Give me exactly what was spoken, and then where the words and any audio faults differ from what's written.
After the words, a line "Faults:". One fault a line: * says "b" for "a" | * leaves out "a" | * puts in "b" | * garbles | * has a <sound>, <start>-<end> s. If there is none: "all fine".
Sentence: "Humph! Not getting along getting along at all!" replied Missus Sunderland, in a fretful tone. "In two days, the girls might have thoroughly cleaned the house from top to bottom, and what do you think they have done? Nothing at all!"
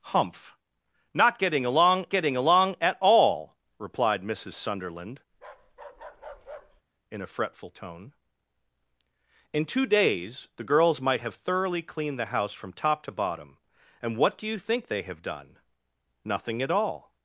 "Humph! Not getting along getting along at all!" replied Missus Sunderland, in a fretful tone. "In two days, the girls might have thoroughly cleaned the house from top to bottom, and what do you think they have done? Nothing at all!"
Faults:
* has a bark, 5.3-6.8 s